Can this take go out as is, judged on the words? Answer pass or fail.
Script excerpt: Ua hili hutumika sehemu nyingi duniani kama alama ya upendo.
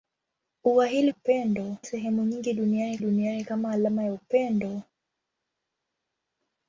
fail